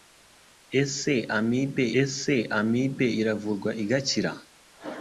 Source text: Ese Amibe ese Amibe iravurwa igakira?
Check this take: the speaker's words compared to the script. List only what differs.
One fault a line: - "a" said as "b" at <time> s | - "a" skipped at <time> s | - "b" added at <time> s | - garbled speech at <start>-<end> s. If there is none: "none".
none